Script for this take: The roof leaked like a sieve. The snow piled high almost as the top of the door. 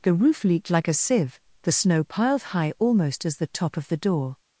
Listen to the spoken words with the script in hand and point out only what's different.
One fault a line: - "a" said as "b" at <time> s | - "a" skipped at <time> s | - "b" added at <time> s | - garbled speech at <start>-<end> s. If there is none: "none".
none